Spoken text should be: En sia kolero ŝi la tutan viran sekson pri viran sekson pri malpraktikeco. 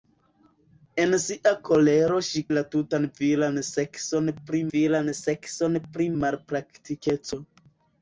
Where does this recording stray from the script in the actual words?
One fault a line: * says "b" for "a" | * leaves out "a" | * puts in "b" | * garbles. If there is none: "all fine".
all fine